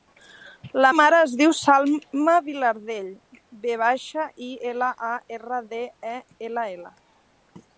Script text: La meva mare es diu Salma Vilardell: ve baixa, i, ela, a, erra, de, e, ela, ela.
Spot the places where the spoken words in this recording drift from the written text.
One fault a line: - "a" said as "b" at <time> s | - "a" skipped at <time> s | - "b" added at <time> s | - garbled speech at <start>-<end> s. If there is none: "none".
- "meva" skipped at 0.9 s